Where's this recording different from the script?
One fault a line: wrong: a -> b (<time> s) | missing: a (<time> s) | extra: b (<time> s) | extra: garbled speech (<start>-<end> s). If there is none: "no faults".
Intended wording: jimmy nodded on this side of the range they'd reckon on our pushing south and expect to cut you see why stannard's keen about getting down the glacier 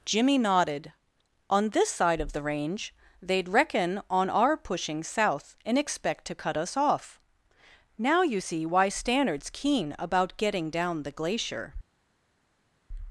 extra: us off now (6.6 s)